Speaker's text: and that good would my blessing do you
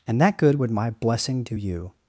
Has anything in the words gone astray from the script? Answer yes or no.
no